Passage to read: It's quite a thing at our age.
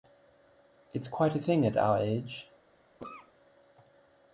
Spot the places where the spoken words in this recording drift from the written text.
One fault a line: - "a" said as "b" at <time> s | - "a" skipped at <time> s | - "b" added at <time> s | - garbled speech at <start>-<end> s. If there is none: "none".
none